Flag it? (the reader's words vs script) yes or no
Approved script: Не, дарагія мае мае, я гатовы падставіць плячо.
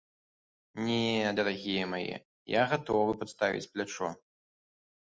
yes